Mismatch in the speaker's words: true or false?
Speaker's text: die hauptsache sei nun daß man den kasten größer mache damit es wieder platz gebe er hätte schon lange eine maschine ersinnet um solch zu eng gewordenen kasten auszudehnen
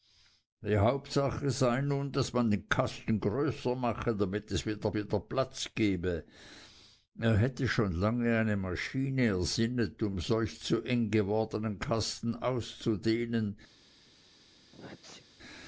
true